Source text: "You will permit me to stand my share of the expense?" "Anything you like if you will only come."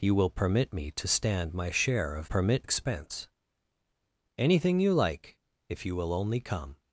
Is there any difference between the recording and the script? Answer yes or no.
yes